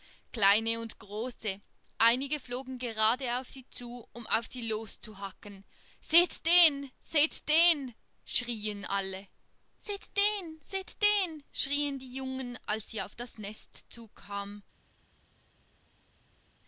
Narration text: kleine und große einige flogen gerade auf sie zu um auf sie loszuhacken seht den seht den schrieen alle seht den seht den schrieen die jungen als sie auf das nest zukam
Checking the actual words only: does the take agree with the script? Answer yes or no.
yes